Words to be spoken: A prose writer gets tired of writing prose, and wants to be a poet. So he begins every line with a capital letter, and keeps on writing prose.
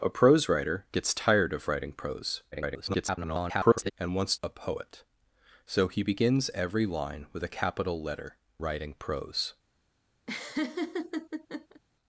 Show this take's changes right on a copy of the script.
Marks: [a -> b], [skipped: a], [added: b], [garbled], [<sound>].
A prose writer gets tired of writing prose, [garbled] and wants [skipped: to be] a poet. So he begins every line with a capital letter, [skipped: and keeps on] writing prose. [laugh]